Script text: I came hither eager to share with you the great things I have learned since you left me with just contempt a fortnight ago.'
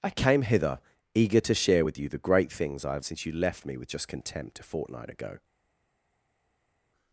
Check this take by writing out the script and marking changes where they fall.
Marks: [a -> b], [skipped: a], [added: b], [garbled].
I came hither eager to share with you the great things I have [skipped: learned] since you left me with just contempt a fortnight ago.'